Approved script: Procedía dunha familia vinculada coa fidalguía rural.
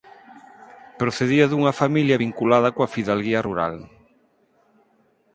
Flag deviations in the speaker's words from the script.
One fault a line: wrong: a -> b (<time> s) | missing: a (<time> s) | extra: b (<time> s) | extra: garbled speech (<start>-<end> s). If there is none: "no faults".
no faults